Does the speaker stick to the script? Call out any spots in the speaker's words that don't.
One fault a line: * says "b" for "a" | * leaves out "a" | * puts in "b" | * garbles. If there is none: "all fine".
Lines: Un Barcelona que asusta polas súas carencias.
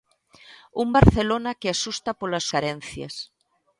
* leaves out "súas"